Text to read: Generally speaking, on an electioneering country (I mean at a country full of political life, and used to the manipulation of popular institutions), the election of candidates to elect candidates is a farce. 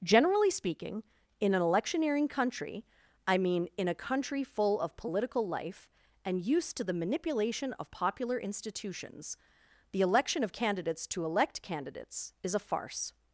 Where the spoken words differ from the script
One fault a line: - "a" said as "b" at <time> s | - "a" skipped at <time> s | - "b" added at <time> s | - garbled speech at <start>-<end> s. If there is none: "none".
- "on" said as "in" at 1.4 s
- "at" said as "in" at 3.8 s